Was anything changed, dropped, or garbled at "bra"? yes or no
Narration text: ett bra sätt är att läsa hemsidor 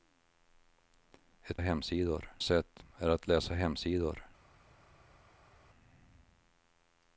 yes